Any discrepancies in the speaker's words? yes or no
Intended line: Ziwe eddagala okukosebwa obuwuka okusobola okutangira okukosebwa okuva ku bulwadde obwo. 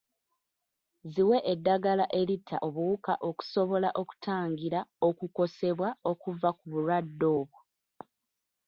yes